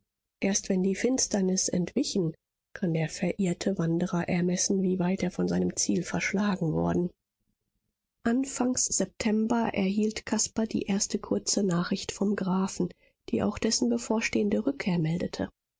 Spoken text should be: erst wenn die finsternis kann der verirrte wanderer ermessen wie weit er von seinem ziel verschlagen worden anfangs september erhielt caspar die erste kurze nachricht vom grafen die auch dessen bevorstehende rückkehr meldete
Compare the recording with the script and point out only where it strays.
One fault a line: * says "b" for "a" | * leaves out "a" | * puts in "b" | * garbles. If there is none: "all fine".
* puts in "entwichen"